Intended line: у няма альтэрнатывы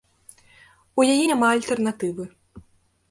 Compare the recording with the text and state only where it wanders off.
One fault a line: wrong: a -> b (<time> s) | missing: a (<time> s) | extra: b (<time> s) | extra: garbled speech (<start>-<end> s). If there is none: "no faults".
extra: яе (1.1 s)